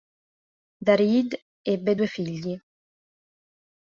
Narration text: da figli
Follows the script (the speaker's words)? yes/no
no